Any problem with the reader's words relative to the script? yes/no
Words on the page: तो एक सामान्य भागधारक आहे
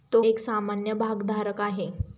no